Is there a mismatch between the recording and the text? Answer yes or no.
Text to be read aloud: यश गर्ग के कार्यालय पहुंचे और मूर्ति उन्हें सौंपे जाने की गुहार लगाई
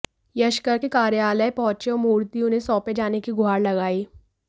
no